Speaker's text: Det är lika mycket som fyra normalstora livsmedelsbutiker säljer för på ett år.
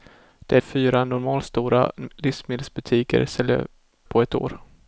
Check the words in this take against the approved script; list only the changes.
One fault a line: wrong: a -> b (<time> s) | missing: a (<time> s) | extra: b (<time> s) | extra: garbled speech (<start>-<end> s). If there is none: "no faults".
missing: lika mycket som (0.6 s)
missing: för (3.7 s)